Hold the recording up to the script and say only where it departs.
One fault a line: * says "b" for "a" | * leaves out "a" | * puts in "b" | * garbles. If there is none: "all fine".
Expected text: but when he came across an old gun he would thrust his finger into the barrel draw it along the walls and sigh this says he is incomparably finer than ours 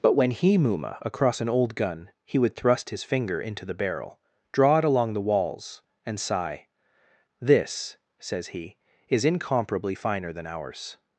* says "muma" for "came"